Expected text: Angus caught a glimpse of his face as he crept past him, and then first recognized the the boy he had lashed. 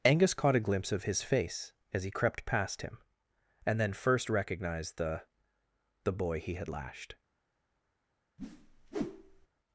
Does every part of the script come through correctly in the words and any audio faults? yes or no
no